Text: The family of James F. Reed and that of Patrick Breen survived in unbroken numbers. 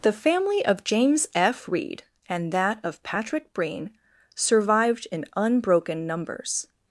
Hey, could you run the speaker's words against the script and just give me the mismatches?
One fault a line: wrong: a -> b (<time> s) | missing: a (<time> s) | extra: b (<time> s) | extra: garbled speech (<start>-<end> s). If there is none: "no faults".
no faults